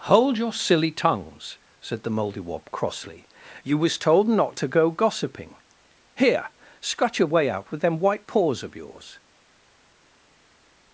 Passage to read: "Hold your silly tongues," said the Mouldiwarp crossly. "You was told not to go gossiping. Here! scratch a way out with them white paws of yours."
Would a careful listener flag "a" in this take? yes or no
yes